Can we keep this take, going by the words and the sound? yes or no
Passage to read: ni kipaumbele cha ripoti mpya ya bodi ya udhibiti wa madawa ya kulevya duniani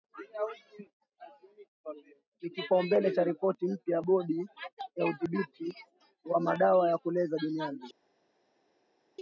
yes